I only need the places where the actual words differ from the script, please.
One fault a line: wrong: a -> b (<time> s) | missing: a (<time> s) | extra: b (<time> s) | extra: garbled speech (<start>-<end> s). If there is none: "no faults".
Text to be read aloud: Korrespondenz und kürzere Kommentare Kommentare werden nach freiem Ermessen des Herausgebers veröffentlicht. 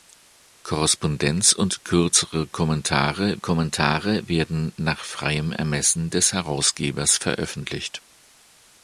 no faults